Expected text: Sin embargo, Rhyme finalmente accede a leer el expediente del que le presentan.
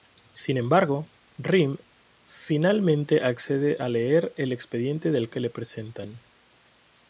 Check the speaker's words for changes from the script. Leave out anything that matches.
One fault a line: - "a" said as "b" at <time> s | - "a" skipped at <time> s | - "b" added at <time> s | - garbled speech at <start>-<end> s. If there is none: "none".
none